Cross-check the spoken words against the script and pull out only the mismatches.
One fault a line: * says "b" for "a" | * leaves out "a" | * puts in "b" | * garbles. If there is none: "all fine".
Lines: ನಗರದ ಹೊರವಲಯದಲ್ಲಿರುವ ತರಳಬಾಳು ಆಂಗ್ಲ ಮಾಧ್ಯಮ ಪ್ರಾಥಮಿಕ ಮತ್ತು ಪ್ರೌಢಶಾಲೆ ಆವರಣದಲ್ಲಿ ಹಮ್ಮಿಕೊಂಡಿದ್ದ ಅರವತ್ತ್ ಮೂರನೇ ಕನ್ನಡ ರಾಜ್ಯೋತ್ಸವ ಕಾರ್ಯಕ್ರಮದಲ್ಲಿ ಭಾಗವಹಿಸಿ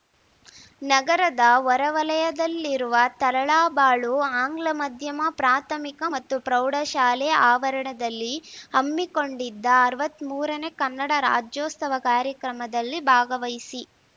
all fine